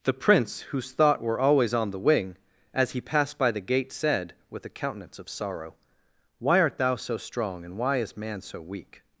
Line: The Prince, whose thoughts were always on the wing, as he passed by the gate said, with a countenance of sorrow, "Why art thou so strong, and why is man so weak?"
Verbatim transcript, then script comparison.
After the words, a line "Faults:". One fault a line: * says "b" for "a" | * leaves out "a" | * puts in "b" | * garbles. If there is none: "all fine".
The Prince, whose thought were always on the wing, as he passed by the gate said, with a countenance of sorrow, "Why art thou so strong, and why is man so weak?"
Faults:
* says "thought" for "thoughts"